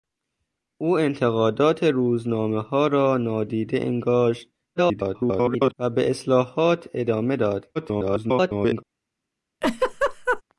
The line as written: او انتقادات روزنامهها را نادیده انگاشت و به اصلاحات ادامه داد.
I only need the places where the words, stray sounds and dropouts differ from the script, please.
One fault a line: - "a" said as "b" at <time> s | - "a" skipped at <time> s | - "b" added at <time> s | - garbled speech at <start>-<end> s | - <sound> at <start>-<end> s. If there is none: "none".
- garbled speech at 4.8-5.7 s
- garbled speech at 7.7-8.8 s
- laugh at 9.6-10.4 s